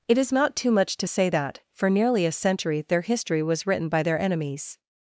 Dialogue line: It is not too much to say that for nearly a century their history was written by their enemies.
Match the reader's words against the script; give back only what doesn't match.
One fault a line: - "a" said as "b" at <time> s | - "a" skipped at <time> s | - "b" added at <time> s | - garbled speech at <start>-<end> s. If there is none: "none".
none